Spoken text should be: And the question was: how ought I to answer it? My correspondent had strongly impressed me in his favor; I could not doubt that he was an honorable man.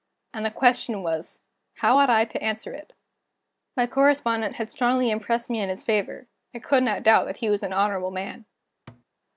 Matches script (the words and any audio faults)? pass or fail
fail